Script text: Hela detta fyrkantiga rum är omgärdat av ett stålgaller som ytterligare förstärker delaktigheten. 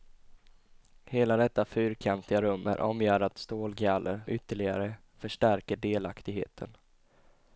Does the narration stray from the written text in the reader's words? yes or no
yes